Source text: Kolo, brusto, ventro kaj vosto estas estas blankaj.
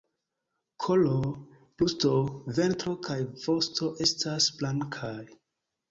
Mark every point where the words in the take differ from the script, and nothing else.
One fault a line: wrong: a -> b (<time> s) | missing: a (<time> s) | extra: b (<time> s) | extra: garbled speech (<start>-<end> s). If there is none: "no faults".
missing: estas (4.5 s)